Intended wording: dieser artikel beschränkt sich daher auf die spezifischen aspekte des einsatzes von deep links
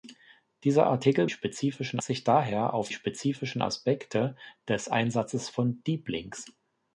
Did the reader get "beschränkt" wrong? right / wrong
wrong